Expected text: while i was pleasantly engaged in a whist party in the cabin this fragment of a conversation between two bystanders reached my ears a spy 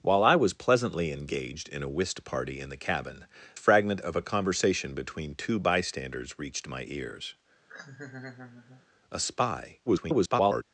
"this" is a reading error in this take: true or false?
true